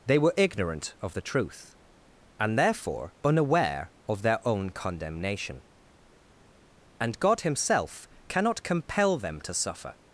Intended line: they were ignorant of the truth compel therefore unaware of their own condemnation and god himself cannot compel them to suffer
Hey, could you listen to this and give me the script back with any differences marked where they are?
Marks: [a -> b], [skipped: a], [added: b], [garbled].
they were ignorant of the truth [compel -> and] therefore unaware of their own condemnation and god himself cannot compel them to suffer